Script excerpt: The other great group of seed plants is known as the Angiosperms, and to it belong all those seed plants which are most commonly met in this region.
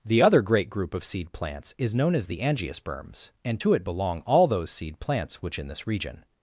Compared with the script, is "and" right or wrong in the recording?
right